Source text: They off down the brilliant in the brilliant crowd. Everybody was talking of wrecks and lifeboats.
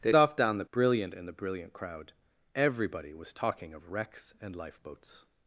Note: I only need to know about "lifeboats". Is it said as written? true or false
true